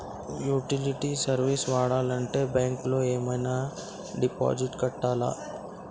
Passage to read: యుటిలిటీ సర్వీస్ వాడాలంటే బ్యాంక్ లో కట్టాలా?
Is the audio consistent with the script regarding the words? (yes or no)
no